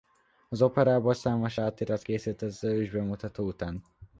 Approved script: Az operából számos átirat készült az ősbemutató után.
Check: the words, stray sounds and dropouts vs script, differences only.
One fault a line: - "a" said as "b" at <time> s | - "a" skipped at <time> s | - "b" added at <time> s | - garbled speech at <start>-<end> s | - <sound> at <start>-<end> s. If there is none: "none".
none